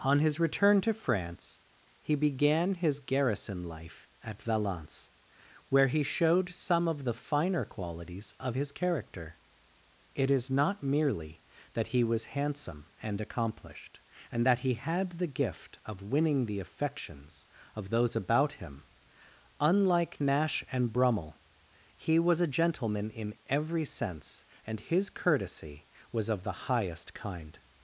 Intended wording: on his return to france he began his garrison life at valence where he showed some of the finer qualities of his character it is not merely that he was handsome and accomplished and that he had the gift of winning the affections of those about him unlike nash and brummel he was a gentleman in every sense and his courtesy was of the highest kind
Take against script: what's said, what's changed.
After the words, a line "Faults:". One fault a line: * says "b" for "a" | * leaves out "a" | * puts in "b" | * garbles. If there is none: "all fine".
on his return to france he began his garrison life at valence where he showed some of the finer qualities of his character it is not merely that he was handsome and accomplished and that he had the gift of winning the affections of those about him unlike nash and brummel he was a gentleman in every sense and his courtesy was of the highest kind
Faults:
all fine